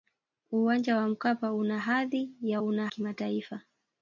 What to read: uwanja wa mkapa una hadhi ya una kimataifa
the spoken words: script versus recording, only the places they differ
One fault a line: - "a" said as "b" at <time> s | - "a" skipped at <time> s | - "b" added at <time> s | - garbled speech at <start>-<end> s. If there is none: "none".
none